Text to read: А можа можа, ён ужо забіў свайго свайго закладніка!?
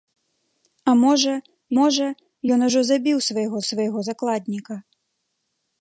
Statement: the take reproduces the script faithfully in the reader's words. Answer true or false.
true